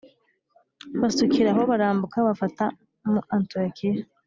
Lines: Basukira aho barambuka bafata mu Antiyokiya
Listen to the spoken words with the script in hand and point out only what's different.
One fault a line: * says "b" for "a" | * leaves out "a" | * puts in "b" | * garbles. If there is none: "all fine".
all fine